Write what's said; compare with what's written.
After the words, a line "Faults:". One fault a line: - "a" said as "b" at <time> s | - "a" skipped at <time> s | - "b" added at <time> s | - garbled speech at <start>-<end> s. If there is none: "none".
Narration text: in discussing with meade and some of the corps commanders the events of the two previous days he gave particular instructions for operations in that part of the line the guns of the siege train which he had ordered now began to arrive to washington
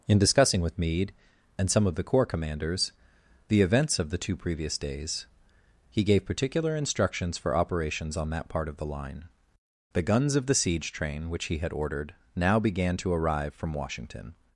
in discussing with meade and some of the corps commanders the events of the two previous days he gave particular instructions for operations on that part of the line the guns of the siege train which he had ordered now began to arrive from washington
Faults:
- "in" said as "on" at 8.2 s
- "to" said as "from" at 13.5 s